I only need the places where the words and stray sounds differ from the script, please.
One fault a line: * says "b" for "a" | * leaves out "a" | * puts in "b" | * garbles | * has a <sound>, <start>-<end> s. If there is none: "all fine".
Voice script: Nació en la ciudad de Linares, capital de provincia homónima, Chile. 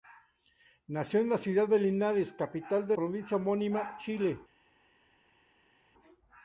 all fine